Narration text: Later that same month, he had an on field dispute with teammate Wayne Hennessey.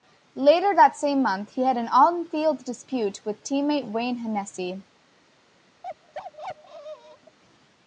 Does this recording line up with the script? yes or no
yes